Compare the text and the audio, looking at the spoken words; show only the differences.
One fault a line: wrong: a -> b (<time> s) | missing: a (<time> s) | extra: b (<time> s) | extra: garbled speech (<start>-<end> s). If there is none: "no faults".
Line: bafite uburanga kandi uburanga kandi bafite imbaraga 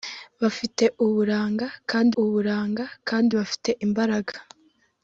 no faults